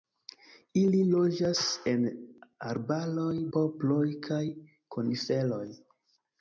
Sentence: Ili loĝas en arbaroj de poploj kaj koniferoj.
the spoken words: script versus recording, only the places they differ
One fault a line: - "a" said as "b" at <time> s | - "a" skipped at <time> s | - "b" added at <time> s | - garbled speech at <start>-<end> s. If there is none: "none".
- "de" skipped at 3.4 s